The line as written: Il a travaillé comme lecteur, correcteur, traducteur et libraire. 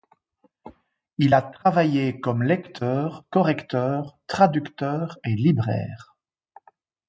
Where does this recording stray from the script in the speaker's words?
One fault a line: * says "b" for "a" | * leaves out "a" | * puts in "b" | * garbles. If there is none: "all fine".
all fine